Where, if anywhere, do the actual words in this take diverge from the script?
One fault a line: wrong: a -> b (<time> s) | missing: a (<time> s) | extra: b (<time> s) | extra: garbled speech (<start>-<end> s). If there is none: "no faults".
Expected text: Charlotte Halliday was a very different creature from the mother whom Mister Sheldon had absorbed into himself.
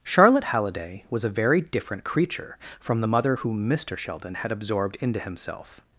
no faults